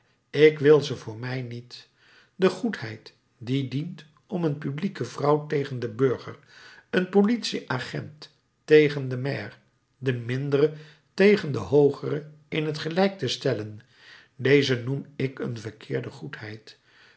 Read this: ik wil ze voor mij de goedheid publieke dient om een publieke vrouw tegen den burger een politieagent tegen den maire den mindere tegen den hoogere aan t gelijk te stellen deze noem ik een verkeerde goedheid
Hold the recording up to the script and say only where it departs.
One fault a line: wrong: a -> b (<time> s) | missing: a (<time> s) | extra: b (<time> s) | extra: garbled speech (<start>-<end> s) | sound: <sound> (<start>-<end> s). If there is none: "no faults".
extra: niet (1.4 s)
wrong: publieke -> die (3.4 s)
wrong: aan -> in (12.5 s)